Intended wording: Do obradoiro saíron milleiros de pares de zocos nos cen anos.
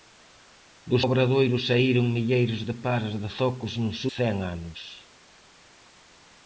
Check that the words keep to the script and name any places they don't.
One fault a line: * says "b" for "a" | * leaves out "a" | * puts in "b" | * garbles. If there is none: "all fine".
all fine